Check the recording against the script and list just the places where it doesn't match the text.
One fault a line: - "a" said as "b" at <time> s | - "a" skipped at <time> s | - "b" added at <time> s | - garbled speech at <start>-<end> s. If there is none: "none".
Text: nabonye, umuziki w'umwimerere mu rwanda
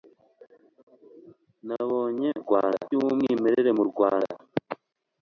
- "umuziki" said as "rwanda" at 2.4 s